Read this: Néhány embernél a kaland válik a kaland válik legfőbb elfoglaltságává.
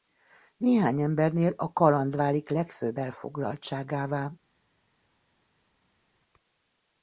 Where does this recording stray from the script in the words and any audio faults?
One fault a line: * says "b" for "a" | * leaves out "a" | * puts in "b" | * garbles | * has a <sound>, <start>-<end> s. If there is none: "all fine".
* leaves out "a kaland válik"